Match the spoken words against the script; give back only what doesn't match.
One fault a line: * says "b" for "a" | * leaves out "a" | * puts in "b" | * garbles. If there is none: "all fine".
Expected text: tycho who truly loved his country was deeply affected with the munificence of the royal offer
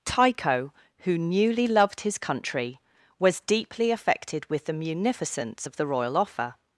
* says "newly" for "truly"